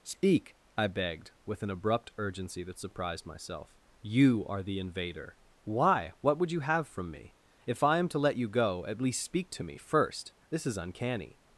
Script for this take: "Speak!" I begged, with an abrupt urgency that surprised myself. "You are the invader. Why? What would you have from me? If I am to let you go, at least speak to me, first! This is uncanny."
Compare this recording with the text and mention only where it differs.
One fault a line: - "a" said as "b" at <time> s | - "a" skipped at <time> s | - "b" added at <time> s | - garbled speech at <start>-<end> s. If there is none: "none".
none